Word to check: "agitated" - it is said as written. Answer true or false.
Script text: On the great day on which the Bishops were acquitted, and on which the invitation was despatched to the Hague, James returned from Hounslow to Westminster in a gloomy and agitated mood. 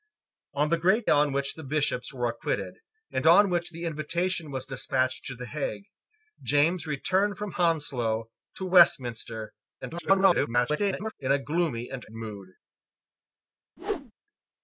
false